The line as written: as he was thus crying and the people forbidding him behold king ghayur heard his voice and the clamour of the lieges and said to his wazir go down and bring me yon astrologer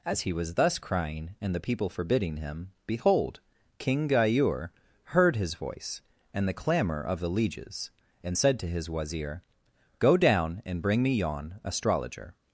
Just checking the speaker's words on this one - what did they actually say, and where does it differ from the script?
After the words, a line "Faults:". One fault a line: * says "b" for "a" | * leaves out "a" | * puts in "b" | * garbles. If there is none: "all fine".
as he was thus crying and the people forbidding him behold king ghayur heard his voice and the clamour of the lieges and said to his wazir go down and bring me yon astrologer
Faults:
all fine